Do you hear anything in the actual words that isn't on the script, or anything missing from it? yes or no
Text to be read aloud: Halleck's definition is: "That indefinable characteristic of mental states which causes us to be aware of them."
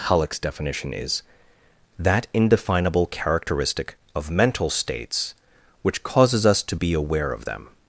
no